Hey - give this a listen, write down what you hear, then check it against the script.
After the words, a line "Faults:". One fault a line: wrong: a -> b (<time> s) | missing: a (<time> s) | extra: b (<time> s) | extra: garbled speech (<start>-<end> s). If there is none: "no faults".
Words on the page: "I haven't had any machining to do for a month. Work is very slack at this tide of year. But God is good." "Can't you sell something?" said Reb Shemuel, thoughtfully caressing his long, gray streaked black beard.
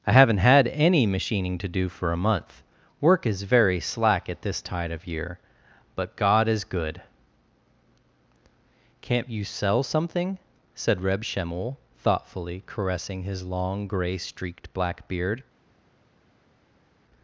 "I haven't had any machining to do for a month. Work is very slack at this tide of year. But God is good." "Can't you sell something?" said Reb Shemuel, thoughtfully caressing his long, gray streaked black beard.
Faults:
no faults